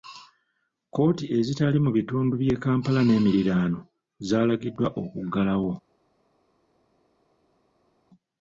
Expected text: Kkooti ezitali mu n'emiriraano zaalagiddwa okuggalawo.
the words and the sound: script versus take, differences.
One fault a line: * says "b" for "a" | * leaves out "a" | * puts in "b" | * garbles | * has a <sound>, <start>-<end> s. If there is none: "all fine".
* puts in "bitundu by'e Kampala"